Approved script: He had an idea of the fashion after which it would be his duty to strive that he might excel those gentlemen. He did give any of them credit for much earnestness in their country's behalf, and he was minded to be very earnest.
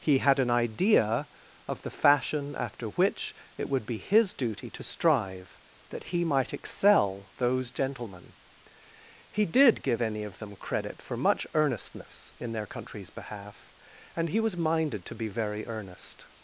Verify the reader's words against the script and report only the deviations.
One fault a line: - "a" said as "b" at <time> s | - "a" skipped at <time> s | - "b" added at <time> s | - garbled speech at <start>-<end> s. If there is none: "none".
none